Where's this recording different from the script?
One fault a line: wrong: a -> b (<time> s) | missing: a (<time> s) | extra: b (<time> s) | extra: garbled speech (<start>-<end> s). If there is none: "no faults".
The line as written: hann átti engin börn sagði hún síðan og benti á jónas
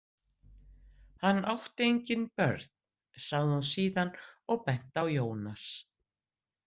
no faults